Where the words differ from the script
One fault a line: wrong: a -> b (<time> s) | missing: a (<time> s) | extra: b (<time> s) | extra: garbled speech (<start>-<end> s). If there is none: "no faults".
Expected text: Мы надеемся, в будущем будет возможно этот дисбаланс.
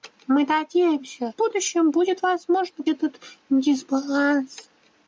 no faults